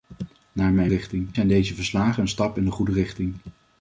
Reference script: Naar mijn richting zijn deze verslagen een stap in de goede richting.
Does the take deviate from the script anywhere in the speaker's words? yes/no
no